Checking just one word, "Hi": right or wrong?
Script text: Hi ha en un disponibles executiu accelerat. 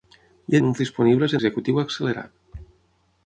right